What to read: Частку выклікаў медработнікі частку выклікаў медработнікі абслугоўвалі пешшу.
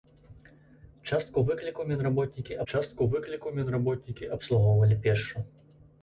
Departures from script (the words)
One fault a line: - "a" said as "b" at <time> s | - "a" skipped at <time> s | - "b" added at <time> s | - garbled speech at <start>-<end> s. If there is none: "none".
none